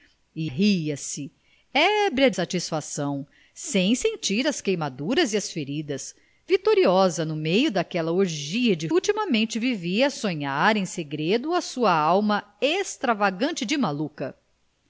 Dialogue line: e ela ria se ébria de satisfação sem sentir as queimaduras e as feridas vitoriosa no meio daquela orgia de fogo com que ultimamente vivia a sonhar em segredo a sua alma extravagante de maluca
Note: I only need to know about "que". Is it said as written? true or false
false